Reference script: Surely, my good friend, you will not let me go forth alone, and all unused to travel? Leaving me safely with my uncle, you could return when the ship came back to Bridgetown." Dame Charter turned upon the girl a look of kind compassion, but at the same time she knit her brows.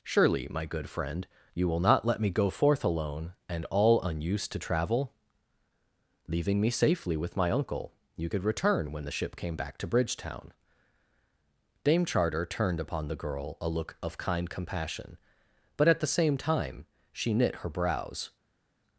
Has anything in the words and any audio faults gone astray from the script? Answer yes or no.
no